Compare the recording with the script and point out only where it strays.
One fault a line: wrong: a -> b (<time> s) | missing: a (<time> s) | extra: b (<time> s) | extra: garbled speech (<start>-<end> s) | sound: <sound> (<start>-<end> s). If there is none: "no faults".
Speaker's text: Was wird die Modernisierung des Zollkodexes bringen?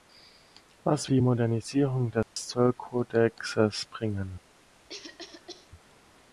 missing: wird (1.1 s)
sound: dropout (2.2-2.4 s)
sound: cough (4.9-5.7 s)